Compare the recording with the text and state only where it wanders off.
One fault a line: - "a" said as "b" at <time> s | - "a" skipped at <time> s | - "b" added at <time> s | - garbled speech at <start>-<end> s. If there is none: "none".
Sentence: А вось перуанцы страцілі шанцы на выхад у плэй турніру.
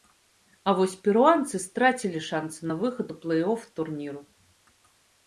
- "оф" added at 3.5 s